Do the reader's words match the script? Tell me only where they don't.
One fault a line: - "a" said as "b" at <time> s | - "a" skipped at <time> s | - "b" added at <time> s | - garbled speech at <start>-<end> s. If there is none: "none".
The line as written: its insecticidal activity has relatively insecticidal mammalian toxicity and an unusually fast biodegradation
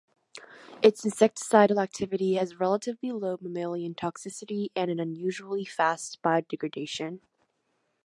- "insecticidal" said as "low" at 3.1 s